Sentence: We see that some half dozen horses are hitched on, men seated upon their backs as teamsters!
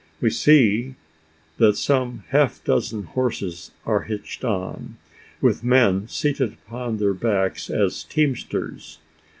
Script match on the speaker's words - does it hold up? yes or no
no